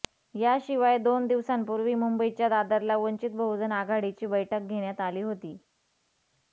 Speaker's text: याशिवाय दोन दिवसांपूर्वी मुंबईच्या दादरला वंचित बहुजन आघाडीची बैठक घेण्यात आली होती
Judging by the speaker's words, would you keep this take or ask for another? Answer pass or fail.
pass